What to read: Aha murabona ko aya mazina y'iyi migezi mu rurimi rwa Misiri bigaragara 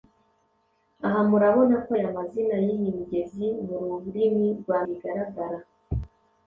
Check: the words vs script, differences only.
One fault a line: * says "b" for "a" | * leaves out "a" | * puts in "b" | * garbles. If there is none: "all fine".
* leaves out "Misiri"